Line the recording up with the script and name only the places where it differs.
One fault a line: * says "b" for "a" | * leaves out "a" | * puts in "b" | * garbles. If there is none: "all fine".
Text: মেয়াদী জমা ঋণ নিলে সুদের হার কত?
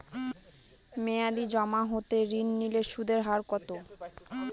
* puts in "হতে"